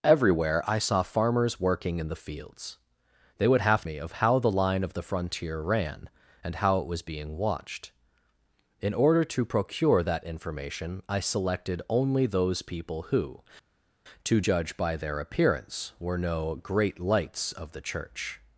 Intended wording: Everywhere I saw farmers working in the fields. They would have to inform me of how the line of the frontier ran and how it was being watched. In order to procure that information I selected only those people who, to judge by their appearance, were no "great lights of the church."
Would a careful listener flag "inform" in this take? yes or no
yes